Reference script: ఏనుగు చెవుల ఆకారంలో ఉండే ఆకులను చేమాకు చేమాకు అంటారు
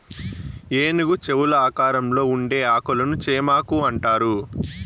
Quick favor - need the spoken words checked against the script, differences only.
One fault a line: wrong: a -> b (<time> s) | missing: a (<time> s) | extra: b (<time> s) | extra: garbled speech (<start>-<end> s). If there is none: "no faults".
missing: చేమాకు (3.8 s)